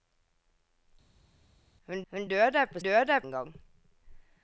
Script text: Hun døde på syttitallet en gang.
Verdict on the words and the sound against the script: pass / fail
fail